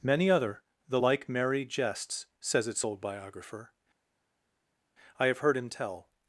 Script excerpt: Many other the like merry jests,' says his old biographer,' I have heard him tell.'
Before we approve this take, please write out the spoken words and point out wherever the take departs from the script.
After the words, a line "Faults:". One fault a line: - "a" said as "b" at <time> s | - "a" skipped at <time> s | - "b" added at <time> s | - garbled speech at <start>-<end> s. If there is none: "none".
Many other the like merry jests,' says its old biographer,' I have heard him tell.'
Faults:
- "his" said as "its" at 2.7 s